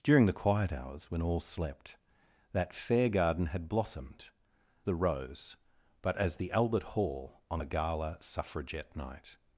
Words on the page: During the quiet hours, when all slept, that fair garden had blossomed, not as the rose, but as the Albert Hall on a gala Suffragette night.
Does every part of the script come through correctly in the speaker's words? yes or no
no